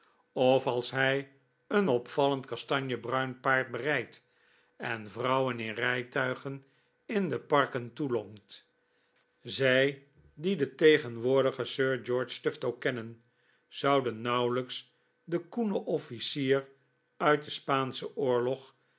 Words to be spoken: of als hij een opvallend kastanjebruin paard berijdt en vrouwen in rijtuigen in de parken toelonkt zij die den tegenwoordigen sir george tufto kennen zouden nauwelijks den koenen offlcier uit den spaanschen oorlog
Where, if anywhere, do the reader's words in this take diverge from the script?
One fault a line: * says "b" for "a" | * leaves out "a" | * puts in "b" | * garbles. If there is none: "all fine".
all fine